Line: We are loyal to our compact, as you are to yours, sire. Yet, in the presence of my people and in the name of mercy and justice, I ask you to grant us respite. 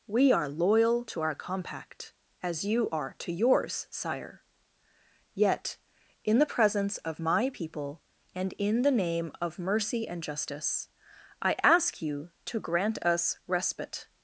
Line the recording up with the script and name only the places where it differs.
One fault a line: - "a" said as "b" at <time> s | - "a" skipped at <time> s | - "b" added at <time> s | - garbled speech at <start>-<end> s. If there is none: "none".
none